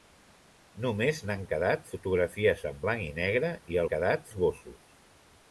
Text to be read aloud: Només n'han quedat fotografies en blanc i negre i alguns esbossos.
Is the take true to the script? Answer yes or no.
no